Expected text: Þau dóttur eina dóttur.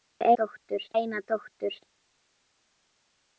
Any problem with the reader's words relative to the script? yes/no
no